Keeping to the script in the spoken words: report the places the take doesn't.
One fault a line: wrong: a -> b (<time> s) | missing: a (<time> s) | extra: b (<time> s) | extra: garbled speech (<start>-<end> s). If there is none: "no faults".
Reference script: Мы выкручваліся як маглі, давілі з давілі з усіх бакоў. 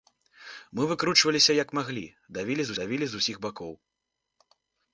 no faults